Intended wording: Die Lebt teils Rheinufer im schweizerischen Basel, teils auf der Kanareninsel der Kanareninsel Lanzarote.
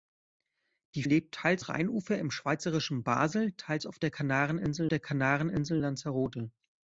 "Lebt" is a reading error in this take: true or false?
false